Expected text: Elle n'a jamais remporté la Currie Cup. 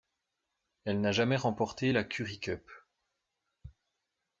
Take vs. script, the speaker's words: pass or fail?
pass